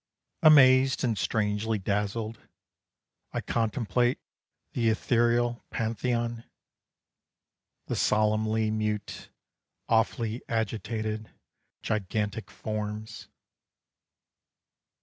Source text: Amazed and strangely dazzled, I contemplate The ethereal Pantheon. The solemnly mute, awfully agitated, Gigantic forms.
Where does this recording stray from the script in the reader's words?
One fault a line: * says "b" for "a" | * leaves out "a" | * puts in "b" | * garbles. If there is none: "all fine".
all fine